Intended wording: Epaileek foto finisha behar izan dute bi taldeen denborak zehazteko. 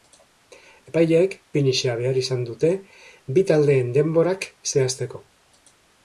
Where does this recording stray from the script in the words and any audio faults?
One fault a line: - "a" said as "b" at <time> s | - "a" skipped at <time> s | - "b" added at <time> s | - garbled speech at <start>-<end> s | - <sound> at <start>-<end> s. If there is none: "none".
- "foto" skipped at 1.4 s